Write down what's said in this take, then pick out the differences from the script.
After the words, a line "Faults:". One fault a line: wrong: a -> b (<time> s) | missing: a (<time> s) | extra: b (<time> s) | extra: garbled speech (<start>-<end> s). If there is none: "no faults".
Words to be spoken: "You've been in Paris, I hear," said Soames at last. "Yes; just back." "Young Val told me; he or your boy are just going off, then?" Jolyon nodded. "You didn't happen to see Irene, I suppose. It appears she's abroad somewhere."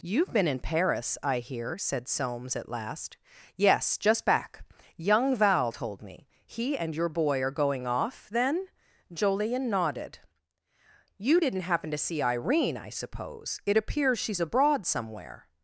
"You've been in Paris, I hear," said Soames at last. "Yes; just back." "Young Val told me; he and your boy are going off, then?" Jolyon nodded. "You didn't happen to see Irene, I suppose. It appears she's abroad somewhere."
Faults:
wrong: or -> and (6.8 s)
missing: just (7.5 s)